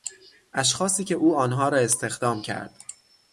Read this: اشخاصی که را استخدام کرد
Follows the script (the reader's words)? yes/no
no